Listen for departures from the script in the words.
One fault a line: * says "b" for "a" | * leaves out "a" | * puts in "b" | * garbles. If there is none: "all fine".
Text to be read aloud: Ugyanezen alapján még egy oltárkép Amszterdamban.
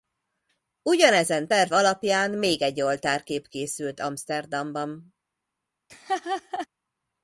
* puts in "terv"
* puts in "készült"